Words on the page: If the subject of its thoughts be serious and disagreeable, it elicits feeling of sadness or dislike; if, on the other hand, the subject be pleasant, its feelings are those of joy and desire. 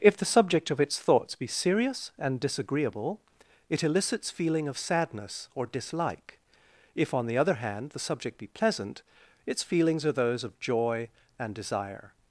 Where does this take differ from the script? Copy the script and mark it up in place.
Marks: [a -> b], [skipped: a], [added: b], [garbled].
If the subject of its thoughts be serious and disagreeable, it elicits feeling of sadness or dislike; if, on the other hand, the subject be pleasant, its feelings are those of joy and desire.